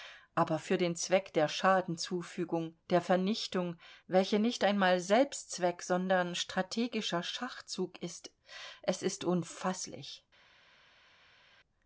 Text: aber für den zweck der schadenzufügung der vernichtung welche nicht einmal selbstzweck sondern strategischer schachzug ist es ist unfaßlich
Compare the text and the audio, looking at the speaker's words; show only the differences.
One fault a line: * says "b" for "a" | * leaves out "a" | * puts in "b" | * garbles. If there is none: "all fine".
all fine